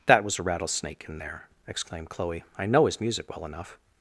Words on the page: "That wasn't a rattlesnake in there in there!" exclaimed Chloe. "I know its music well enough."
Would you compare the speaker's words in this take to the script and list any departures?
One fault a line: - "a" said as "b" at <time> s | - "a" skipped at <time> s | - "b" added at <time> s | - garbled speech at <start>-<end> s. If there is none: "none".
- "wasn't" said as "was" at 0.2 s
- "in there" skipped at 1.5 s
- "its" said as "his" at 2.9 s